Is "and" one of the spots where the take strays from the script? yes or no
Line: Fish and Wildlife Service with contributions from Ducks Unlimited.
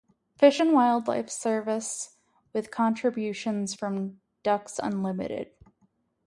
no